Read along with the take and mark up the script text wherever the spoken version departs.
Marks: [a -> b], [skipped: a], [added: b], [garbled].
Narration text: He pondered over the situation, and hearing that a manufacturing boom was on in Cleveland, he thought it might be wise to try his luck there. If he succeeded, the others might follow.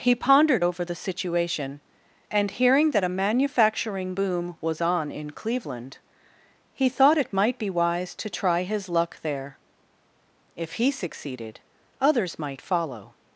He pondered over the situation, and hearing that a manufacturing boom was on in Cleveland, he thought it might be wise to try his luck there. If he succeeded, [skipped: the] others might follow.